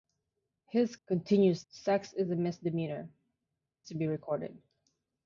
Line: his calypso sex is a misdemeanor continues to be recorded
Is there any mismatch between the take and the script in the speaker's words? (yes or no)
yes